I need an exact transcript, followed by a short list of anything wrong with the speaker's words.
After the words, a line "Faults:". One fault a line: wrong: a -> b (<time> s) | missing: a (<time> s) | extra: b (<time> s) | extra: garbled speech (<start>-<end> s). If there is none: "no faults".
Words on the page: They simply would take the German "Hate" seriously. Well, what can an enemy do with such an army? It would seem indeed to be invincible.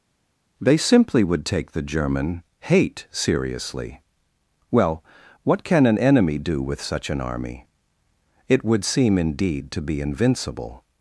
They simply would take the German "Hate" seriously. Well, what can an enemy do with such an army? It would seem indeed to be invincible.
Faults:
no faults